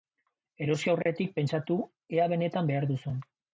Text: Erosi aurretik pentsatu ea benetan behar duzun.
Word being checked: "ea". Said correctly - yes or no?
yes